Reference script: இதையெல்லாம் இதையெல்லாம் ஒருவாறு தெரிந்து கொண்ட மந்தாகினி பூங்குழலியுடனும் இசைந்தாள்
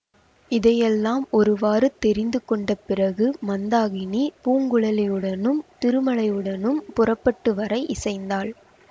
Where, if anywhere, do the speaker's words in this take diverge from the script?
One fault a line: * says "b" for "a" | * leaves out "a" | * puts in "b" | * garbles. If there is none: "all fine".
* leaves out "இதையெல்லாம்"
* puts in "பிறகு"
* puts in "திருமலையுடனும் புறப்பட்டு வர"